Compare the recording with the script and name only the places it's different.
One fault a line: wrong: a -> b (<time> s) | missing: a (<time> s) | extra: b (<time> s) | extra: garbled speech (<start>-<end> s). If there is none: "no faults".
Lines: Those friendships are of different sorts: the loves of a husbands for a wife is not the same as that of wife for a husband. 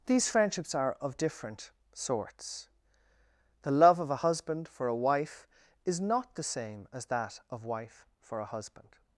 wrong: Those -> These (0.1 s)
wrong: loves -> love (3.7 s)
wrong: husbands -> husband (4.2 s)